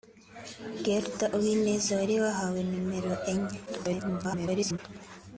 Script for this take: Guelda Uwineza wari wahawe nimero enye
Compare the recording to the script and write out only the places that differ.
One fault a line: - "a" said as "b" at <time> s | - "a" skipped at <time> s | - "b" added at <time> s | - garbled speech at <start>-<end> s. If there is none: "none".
- garbled speech at 3.7-4.8 s